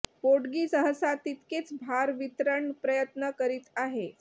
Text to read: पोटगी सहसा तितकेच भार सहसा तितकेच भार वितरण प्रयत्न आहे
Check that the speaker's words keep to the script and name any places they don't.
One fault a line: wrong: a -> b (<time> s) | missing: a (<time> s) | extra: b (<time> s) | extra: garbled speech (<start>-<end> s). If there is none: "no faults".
missing: सहसा तितकेच भार (2.1 s)
extra: करीत (3.4 s)